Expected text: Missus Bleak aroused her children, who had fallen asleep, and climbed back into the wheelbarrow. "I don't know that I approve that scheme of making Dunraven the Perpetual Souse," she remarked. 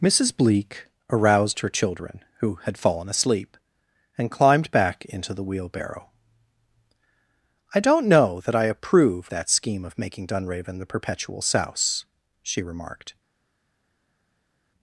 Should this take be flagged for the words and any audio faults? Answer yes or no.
no